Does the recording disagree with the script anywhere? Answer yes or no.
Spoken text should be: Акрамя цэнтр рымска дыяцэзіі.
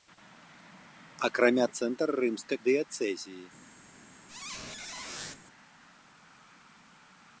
no